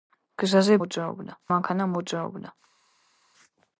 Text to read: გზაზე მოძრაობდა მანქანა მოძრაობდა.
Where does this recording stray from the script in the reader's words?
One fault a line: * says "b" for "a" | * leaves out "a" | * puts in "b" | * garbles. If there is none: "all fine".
all fine